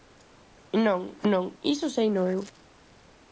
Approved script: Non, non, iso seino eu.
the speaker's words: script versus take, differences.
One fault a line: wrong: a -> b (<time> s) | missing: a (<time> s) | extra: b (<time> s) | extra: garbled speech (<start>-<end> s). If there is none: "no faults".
no faults